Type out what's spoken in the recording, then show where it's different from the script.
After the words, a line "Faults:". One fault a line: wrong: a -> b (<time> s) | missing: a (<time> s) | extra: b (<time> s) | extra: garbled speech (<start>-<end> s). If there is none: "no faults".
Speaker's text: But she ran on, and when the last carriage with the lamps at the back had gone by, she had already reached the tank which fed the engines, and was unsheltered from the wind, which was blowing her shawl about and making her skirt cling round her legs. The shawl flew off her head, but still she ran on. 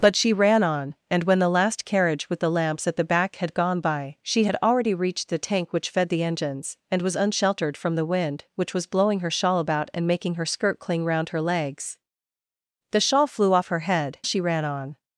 But she ran on, and when the last carriage with the lamps at the back had gone by, she had already reached the tank which fed the engines, and was unsheltered from the wind, which was blowing her shawl about and making her skirt cling round her legs. The shawl flew off her head, she ran on.
Faults:
missing: but still (14.2 s)